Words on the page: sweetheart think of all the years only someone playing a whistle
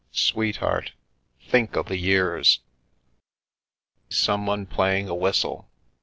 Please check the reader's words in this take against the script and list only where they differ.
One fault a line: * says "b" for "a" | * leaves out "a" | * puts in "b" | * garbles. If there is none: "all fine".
* leaves out "all"
* leaves out "only"